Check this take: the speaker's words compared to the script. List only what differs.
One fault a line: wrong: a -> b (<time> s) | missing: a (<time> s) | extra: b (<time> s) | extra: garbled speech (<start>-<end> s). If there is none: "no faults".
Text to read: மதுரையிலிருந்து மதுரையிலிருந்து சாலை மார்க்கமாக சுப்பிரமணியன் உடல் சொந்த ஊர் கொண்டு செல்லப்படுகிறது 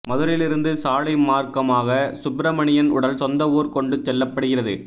missing: மதுரையிலிருந்து (0.7 s)